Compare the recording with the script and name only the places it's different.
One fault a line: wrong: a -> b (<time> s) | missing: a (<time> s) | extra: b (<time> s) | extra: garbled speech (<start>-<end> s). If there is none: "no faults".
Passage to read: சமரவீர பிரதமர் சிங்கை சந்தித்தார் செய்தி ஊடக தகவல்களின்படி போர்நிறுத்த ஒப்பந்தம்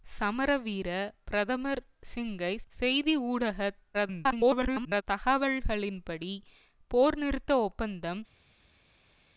missing: சந்தித்தார் (2.5 s)
extra: garbled speech (3.9-5.0 s)